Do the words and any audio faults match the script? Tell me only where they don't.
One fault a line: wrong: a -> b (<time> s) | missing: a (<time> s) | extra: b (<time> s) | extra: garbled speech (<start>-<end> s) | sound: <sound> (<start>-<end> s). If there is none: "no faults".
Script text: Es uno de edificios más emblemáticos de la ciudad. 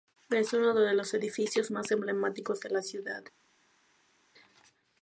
extra: los (0.9 s)